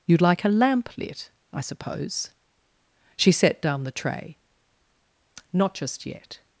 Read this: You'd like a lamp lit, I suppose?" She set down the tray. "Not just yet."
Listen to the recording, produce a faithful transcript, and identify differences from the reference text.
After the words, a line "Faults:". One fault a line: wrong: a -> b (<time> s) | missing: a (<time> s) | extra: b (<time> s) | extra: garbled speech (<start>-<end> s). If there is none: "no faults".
You'd like a lamp lit, I suppose?" She set down the tray. "Not just yet."
Faults:
no faults